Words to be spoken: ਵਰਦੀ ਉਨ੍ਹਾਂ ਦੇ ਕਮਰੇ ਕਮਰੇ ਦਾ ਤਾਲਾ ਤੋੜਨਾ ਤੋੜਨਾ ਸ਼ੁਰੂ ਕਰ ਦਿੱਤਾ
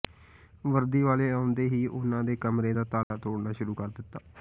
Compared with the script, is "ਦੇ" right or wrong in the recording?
right